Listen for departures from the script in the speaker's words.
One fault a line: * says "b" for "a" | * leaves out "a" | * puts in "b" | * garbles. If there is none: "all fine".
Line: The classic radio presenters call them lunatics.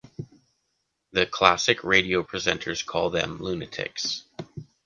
all fine